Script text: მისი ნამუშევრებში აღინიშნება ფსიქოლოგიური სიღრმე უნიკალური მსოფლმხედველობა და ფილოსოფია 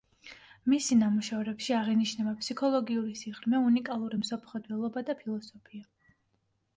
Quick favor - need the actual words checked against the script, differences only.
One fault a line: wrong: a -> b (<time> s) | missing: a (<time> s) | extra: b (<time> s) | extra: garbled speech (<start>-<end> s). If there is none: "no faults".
no faults